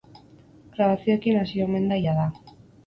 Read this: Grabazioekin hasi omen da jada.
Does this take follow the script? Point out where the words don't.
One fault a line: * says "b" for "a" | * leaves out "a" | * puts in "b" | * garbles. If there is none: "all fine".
all fine